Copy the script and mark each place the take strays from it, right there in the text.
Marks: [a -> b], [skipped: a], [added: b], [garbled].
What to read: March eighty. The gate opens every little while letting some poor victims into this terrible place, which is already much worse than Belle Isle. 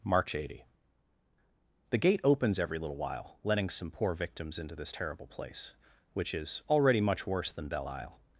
March eighty. The gate opens every little while letting some poor victims into this terrible place, which is already much worse than Belle Isle.